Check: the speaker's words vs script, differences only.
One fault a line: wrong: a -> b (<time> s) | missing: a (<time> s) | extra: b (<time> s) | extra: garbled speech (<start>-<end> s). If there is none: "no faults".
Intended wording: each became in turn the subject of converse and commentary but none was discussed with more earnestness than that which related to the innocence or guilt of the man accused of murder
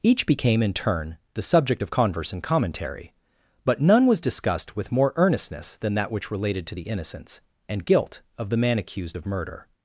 wrong: or -> and (7.7 s)